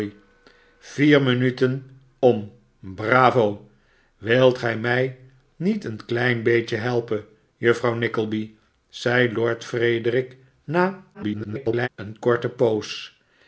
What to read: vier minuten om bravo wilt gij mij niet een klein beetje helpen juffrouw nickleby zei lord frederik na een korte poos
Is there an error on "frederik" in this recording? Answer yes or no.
no